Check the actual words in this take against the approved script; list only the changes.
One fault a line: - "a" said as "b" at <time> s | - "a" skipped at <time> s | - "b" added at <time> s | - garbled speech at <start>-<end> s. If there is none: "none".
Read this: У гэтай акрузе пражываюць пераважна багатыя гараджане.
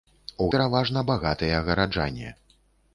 - "гэтай акрузе пражываюць" skipped at 0.5 s